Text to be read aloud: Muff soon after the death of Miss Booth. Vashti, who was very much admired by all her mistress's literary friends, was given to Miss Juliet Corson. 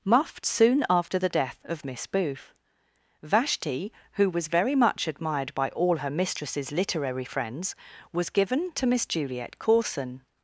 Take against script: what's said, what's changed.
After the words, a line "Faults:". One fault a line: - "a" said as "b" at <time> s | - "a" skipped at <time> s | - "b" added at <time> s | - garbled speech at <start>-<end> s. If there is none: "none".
Muff soon after the death of Miss Booth. Vashti, who was very much admired by all her mistress's literary friends, was given to Miss Juliet Corson.
Faults:
none